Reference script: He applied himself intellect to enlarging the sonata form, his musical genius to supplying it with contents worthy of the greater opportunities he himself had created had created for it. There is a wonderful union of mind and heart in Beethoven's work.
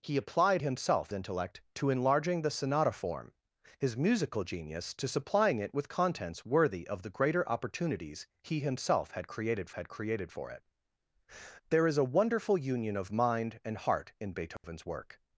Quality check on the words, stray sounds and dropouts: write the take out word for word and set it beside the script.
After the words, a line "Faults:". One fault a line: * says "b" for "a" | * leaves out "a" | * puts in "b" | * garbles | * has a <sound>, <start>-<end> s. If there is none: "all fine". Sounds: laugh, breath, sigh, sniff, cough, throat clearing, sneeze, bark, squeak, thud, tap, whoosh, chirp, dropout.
He applied himself intellect to enlarging the sonata form, his musical genius to supplying it with contents worthy of the greater opportunities he himself had created had created for it. There is a wonderful union of mind and heart in Beethoven's work.
Faults:
* has a dropout, 14.6-14.6 s